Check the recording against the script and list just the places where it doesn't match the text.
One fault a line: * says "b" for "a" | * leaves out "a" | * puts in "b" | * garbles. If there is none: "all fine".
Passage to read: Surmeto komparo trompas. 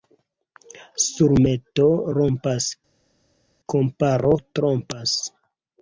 * puts in "rompas"